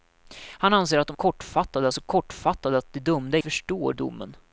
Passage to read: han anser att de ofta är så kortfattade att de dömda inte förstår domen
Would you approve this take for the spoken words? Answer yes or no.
no